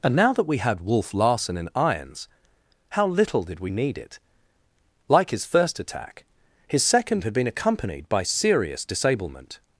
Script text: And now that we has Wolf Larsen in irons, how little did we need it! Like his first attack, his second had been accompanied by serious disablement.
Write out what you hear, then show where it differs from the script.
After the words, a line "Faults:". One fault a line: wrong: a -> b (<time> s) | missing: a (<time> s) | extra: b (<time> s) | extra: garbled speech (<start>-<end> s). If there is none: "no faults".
And now that we had Wolf Larsen in irons, how little did we need it! Like his first attack, his second had been accompanied by serious disablement.
Faults:
wrong: has -> had (0.6 s)